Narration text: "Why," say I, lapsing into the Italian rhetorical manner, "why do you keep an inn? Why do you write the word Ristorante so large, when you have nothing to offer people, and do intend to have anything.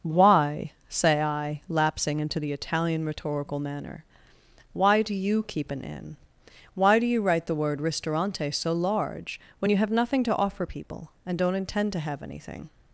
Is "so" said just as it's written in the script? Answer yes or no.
yes